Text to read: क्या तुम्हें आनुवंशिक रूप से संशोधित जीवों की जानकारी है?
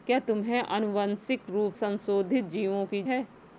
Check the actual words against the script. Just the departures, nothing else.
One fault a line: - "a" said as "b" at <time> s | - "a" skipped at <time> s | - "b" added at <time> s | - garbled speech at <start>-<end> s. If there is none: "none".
- "से" skipped at 1.7 s
- "जानकारी" skipped at 3.0 s